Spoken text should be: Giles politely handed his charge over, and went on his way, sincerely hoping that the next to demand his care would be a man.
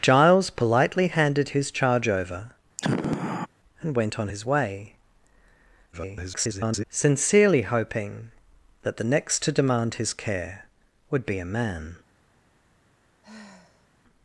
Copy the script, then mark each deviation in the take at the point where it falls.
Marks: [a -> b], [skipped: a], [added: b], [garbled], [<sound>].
Giles politely handed his charge over, [sigh] and went on his way, [garbled] sincerely hoping that the next to demand his care would be a man. [sigh]